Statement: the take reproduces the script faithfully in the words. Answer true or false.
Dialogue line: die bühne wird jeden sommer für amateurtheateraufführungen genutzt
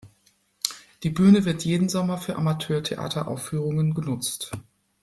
true